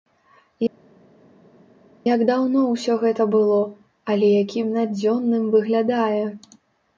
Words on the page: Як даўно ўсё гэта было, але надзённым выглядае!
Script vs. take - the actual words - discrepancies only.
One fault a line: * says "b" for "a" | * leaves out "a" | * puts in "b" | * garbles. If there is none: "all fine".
* puts in "якім"